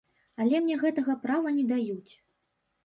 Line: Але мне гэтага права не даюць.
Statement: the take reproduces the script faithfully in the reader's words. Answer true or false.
true